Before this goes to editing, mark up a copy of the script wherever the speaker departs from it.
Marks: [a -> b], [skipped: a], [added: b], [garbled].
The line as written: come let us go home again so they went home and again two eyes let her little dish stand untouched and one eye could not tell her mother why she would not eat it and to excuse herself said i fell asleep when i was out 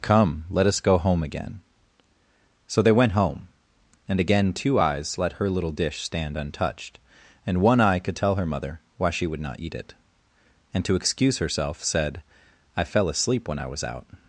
come let us go home again so they went home and again two eyes let her little dish stand untouched and one eye could [skipped: not] tell her mother why she would not eat it and to excuse herself said i fell asleep when i was out